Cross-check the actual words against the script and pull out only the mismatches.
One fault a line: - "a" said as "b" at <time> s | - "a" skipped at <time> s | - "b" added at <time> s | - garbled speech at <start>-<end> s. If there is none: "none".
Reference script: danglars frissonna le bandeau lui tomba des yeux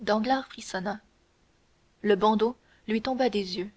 none